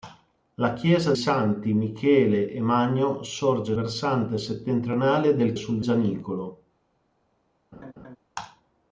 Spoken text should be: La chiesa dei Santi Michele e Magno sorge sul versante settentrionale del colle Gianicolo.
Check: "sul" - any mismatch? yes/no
yes